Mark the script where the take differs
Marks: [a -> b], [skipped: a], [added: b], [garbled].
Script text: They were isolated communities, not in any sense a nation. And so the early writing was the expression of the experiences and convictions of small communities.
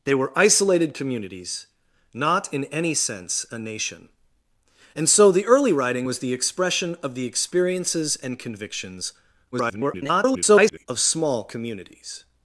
They were isolated communities, not in any sense a nation. And so the early writing was the expression of the experiences and convictions [garbled] of small communities.